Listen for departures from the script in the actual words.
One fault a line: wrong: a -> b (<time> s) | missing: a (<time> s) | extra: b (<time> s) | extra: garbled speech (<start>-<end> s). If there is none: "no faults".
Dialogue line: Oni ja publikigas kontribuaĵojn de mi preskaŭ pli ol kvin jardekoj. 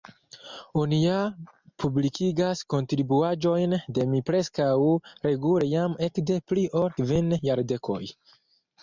extra: regule jam ekde (5.3 s)